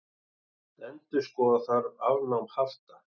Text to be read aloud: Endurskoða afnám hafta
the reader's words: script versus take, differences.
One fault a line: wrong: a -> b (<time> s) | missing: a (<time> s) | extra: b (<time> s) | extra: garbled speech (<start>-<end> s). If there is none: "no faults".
extra: þarf (1.7 s)